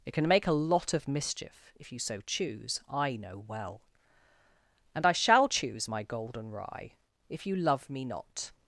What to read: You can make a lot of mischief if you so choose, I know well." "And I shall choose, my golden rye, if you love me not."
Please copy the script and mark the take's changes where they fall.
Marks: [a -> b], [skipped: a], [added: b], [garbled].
[You -> It] can make a lot of mischief if you so choose, I know well." "And I shall choose, my golden rye, if you love me not."